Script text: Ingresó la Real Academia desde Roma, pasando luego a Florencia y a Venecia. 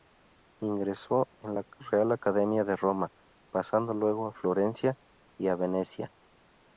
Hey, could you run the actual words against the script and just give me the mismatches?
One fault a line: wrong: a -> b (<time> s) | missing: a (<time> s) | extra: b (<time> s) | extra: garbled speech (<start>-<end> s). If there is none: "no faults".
extra: en (1.4 s)
wrong: desde -> de (2.6 s)